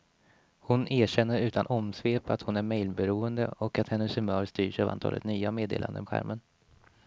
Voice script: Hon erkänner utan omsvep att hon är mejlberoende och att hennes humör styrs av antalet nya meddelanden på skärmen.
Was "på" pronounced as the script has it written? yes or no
no